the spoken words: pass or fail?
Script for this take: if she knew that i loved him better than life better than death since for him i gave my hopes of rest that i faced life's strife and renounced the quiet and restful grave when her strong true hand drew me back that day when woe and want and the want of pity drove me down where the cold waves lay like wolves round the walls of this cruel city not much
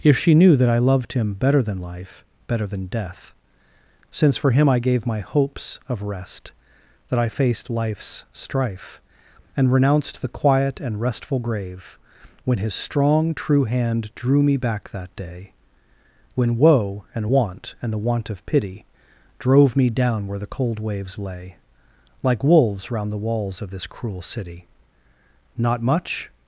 fail